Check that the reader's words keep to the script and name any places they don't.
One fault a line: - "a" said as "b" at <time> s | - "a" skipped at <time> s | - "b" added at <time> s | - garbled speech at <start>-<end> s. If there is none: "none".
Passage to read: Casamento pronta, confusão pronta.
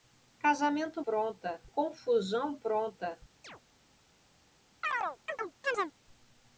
none